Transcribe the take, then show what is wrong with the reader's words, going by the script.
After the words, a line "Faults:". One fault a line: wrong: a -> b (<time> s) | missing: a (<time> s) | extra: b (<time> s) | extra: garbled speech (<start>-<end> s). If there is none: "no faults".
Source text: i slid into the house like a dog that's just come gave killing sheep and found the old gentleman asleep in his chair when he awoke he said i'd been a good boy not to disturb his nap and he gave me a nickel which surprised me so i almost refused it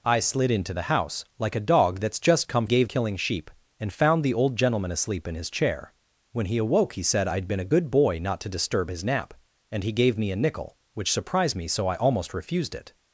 i slid into the house like a dog that's just come gave killing sheep and found the old gentleman asleep in his chair when he awoke he said i'd been a good boy not to disturb his nap and he gave me a nickel which surprised me so i almost refused it
Faults:
no faults